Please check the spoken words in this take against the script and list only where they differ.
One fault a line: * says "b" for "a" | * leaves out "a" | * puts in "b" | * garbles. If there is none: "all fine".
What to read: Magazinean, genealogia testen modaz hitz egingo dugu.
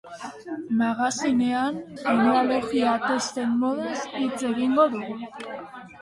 all fine